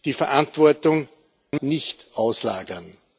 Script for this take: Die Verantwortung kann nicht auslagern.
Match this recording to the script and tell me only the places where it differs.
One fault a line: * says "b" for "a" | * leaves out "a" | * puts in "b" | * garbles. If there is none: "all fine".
all fine